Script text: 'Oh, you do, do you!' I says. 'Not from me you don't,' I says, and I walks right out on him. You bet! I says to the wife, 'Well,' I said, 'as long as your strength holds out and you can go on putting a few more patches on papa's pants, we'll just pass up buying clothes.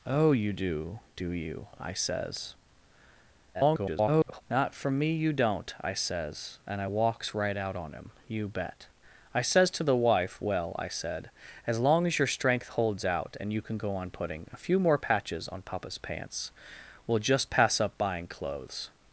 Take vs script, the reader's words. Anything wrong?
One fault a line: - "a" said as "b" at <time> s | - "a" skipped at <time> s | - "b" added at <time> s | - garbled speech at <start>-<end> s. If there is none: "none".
- garbled speech at 3.5-4.4 s